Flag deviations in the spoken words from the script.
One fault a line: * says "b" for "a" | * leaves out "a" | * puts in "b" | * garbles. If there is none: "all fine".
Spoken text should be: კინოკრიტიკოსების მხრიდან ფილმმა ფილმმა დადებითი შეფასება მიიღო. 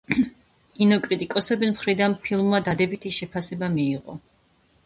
* leaves out "ფილმმა"